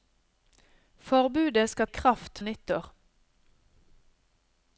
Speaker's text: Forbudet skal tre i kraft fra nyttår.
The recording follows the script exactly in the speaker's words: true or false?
false